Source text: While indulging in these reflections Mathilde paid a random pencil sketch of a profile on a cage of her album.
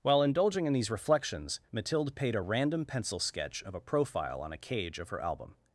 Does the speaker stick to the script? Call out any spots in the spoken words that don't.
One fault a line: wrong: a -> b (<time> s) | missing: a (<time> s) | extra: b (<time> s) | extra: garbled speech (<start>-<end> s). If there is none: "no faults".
no faults